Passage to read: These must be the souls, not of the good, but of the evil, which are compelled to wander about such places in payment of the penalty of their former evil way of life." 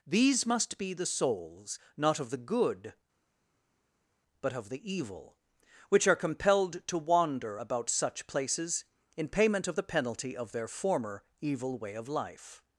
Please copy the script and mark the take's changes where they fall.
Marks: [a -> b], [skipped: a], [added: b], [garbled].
These must be the souls, not of the good, but of the evil, which are compelled to wander about such places in payment of the penalty of their former evil way of life."